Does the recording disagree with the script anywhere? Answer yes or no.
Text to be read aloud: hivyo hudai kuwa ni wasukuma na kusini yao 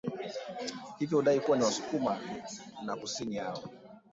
no